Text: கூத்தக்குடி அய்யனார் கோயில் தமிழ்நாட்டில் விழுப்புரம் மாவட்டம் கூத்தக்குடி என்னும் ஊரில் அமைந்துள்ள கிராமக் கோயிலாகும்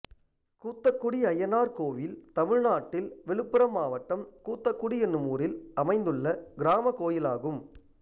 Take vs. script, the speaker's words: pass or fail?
pass